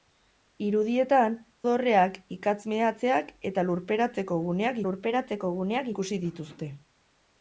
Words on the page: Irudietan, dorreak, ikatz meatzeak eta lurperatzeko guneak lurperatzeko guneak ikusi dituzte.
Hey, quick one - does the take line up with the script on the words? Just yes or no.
yes